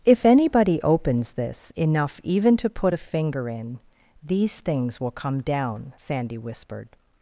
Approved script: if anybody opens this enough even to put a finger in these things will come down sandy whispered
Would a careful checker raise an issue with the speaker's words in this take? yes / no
no